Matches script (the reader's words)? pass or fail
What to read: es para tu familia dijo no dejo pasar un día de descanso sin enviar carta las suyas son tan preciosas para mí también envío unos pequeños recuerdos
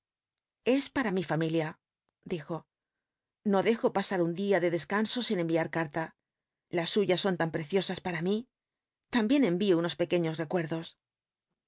fail